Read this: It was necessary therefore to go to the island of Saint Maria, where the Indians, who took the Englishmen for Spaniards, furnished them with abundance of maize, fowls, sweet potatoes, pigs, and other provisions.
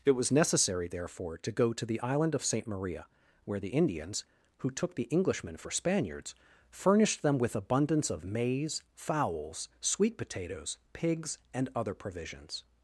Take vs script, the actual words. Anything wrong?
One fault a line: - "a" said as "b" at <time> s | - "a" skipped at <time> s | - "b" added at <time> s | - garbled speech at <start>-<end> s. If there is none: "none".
none